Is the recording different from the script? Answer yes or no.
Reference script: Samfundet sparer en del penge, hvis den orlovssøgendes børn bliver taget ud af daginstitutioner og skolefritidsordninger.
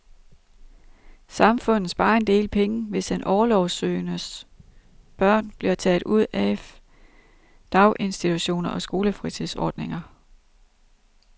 no